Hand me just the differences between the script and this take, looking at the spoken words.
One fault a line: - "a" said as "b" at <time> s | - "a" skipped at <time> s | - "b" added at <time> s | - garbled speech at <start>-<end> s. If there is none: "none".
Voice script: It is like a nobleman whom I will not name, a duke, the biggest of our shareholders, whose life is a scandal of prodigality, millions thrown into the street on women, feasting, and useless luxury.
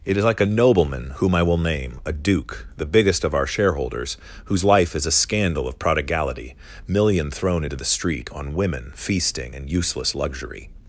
- "not" skipped at 1.6 s
- "millions" said as "million" at 6.9 s